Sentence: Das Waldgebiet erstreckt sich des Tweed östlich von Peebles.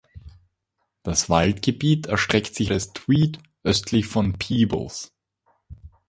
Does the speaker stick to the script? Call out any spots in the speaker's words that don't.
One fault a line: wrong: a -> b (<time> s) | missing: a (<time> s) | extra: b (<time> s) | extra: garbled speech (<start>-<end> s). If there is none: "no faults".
no faults